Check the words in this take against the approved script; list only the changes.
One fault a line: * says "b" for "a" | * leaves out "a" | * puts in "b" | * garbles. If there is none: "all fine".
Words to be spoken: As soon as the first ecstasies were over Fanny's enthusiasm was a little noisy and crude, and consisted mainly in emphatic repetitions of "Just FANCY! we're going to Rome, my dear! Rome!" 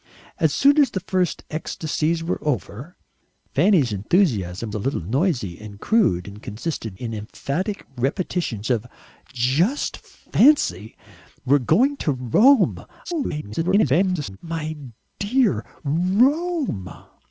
* leaves out "was"
* leaves out "mainly"
* garbles